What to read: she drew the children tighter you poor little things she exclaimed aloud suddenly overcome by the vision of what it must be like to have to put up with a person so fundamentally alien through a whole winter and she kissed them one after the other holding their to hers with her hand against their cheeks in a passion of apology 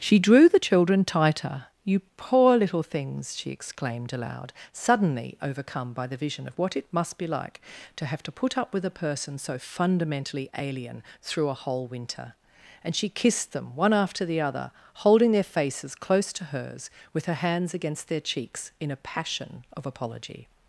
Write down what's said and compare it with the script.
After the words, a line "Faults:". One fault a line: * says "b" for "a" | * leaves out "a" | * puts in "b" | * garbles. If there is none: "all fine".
she drew the children tighter you poor little things she exclaimed aloud suddenly overcome by the vision of what it must be like to have to put up with a person so fundamentally alien through a whole winter and she kissed them one after the other holding their faces close to hers with her hands against their cheeks in a passion of apology
Faults:
* puts in "faces close"
* says "hands" for "hand"